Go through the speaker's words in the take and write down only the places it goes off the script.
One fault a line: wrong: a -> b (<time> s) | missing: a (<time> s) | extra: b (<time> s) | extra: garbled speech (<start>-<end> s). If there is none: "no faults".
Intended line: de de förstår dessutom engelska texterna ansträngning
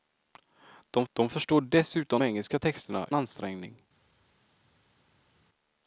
no faults